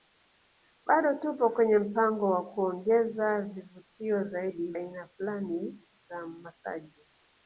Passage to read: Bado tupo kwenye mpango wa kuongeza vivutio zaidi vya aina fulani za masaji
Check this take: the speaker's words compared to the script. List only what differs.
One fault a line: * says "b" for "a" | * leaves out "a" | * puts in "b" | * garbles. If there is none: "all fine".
* leaves out "vya"